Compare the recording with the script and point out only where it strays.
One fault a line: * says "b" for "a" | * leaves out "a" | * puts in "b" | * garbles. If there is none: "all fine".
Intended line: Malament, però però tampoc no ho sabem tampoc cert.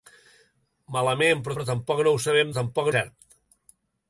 all fine